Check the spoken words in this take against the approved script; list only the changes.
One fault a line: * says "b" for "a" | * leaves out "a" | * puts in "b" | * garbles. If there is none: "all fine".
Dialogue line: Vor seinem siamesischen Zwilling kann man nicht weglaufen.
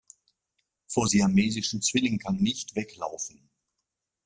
* leaves out "seinem"
* leaves out "man"